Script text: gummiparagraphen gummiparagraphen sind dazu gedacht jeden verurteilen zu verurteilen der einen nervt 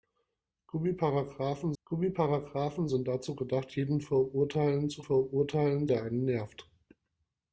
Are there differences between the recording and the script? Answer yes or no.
no